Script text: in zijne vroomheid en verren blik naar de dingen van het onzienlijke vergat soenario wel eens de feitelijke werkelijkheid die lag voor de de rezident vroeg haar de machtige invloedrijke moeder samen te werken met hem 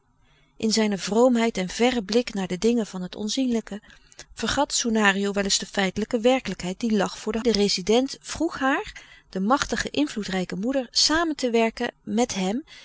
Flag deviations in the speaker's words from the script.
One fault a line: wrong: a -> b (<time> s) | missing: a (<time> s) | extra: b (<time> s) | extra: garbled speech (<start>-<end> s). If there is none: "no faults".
no faults